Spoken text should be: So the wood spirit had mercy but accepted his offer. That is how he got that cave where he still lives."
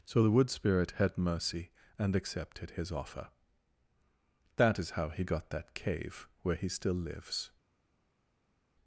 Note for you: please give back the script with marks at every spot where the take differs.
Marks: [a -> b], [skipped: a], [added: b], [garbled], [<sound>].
So the wood spirit had mercy [but -> and] accepted his offer. That is how he got that cave where he still lives."